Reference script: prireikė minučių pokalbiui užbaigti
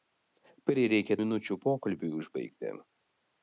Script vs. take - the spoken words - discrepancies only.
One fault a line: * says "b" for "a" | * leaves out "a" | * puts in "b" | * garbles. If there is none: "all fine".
all fine